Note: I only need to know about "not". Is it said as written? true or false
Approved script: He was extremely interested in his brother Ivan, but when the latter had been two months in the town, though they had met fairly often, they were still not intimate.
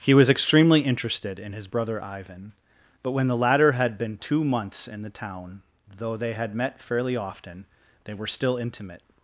false